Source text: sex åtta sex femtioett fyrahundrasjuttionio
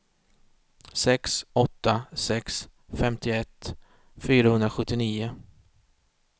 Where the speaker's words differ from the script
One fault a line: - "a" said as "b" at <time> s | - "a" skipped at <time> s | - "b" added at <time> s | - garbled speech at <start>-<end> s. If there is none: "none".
none